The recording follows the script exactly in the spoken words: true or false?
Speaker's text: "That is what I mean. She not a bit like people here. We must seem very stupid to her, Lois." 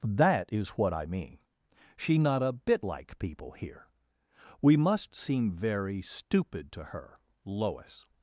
true